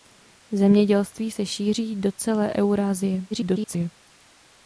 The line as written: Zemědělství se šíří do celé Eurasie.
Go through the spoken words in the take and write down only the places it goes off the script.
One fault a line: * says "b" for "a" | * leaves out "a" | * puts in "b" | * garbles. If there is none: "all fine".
* garbles